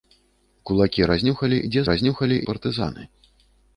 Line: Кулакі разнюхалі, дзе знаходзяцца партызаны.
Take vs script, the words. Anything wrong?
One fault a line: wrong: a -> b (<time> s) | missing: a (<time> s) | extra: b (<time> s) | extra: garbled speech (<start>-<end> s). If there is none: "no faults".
wrong: знаходзяцца -> разнюхалі (1.9 s)